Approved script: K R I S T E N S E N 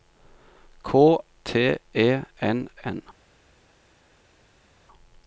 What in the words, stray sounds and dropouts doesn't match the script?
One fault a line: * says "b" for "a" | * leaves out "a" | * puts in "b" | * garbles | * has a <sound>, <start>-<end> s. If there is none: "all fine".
* leaves out "R I S"
* leaves out "S E"